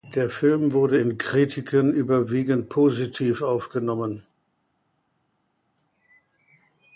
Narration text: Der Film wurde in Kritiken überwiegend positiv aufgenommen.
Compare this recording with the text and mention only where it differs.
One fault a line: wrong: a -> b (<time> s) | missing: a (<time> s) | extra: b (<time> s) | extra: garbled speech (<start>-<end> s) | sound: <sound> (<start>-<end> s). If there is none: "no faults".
no faults